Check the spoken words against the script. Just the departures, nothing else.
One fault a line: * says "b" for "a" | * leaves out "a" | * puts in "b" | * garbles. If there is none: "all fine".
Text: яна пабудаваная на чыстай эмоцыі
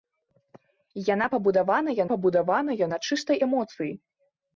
* puts in "пабудаваная"